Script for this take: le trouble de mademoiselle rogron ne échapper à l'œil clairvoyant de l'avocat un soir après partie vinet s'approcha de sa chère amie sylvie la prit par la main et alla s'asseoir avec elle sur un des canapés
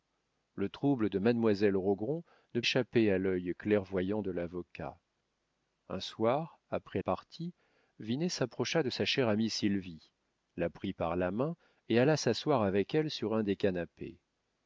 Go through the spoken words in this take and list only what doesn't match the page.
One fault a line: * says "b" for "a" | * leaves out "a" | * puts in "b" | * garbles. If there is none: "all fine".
all fine